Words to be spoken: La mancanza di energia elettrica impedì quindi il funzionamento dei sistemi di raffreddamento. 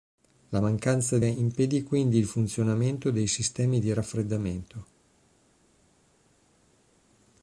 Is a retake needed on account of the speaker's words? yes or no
yes